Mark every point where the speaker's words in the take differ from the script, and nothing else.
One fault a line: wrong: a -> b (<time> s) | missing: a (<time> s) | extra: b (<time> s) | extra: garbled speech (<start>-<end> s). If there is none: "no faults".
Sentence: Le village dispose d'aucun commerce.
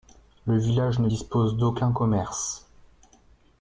extra: ne (1.0 s)